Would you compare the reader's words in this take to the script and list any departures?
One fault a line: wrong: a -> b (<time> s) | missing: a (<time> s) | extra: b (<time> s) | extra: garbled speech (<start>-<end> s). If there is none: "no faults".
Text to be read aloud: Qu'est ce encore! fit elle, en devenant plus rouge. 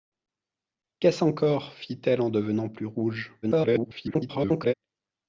extra: garbled speech (3.4-4.7 s)